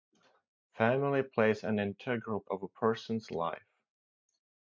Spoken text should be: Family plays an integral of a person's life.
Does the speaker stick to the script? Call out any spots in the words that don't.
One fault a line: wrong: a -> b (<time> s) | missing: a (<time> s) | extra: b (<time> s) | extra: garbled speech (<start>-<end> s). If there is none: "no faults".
no faults